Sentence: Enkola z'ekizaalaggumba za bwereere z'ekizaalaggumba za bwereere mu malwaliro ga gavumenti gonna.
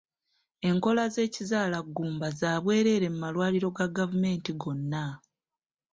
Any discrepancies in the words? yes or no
yes